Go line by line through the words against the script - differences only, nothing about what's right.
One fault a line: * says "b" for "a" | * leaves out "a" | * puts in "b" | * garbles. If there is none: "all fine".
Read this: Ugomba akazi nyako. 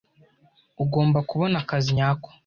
* puts in "kubona"